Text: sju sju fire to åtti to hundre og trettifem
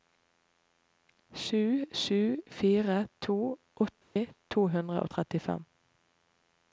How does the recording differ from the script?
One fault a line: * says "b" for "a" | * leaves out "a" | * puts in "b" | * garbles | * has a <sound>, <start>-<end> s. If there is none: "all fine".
* has a dropout, 4.0-4.2 s